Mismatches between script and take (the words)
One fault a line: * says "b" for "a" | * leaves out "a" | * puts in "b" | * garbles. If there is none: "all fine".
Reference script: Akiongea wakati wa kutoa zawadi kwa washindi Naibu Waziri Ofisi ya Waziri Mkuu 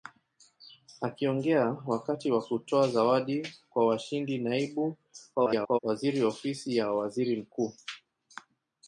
* garbles